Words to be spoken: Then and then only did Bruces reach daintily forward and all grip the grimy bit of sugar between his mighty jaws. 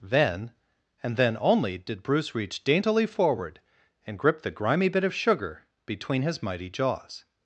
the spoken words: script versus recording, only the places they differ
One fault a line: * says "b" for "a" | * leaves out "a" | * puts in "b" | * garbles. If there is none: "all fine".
* says "Bruce" for "Bruces"
* leaves out "all"